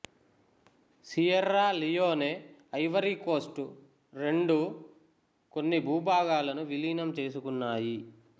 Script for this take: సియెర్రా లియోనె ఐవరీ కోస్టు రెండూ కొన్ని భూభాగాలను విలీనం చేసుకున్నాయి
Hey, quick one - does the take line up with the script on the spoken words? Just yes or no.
yes